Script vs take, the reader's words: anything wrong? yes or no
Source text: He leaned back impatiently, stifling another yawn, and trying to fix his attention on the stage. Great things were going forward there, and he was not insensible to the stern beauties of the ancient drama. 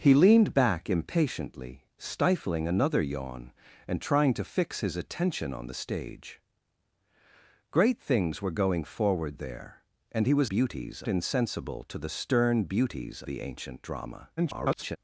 yes